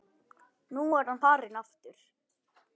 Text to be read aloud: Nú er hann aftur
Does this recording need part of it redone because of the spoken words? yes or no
yes